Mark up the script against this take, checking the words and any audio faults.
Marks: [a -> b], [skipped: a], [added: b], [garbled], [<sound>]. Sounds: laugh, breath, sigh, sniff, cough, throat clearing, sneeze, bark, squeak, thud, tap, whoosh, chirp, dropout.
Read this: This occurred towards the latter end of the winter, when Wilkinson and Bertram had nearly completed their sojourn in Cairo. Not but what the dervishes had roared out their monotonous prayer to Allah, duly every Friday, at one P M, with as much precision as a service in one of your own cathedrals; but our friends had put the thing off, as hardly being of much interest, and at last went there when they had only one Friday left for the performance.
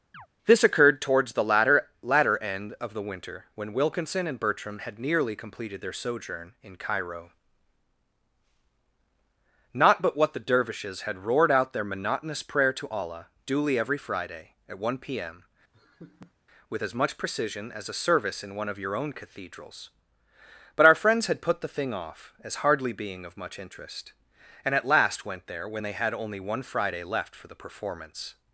[chirp] This occurred towards the latter [added: latter] end of the winter, when Wilkinson and Bertram had nearly completed their sojourn in Cairo. Not but what the dervishes had roared out their monotonous prayer to Allah, duly every Friday, at one P M, [laugh] with as much precision as a service in one of your own cathedrals; but our friends had put the thing off, as hardly being of much interest, and at last went there when they had only one Friday left for the performance.